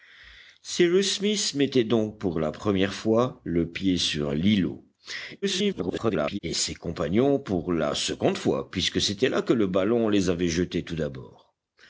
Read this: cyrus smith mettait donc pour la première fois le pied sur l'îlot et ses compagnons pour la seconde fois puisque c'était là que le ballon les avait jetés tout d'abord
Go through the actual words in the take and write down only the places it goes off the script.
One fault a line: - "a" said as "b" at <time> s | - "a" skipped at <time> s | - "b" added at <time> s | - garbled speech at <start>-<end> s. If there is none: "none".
- garbled speech at 5.4-6.4 s